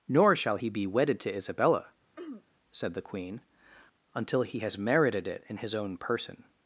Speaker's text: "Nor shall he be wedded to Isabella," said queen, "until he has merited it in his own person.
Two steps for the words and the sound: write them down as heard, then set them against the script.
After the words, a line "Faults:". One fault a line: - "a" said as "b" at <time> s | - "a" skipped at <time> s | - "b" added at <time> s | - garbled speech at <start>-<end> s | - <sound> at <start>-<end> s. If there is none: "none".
"Nor shall he be wedded to Isabella," said the queen, "until he has merited it in his own person.
Faults:
- throat clearing at 2.2-2.4 s
- "the" added at 2.9 s